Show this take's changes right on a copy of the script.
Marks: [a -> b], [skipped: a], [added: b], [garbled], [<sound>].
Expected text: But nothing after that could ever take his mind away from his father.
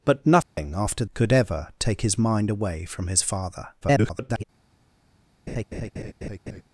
But nothing [dropout] after [skipped: that] could ever take his mind away from his father. [garbled] [laugh]